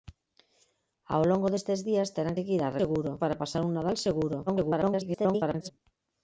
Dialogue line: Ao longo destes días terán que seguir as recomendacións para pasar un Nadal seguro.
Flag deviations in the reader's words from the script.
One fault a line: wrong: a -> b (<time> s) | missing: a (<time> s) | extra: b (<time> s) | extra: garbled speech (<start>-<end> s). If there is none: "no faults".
missing: que (2.4 s)
wrong: recomendacións -> seguro (2.8 s)
extra: garbled speech (4.5-5.7 s)